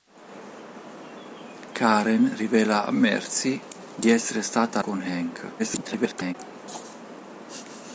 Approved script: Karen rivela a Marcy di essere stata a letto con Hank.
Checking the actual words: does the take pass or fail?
fail